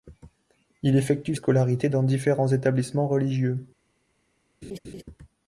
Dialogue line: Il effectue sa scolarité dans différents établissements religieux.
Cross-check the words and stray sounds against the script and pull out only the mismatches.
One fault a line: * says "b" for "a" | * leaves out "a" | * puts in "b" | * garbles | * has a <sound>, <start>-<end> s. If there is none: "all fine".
* leaves out "sa"
* has a laugh, 4.6-5.0 s